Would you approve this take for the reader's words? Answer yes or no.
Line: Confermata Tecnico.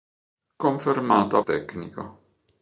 yes